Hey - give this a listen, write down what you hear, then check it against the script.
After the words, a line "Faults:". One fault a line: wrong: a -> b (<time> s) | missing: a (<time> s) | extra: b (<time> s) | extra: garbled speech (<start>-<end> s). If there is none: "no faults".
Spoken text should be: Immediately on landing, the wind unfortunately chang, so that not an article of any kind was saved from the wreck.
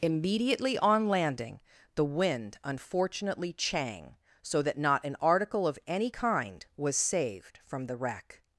Immediately on landing, the wind unfortunately chang, so that not an article of any kind was saved from the wreck.
Faults:
no faults